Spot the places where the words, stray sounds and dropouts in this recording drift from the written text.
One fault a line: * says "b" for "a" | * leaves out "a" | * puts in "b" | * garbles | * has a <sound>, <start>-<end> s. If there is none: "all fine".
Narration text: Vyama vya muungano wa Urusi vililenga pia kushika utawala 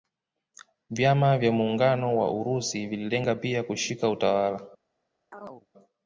* has a chirp, 5.3-5.7 s